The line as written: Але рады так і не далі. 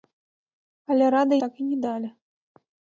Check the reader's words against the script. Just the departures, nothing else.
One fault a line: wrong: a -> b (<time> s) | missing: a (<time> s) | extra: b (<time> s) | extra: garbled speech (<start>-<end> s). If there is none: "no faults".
no faults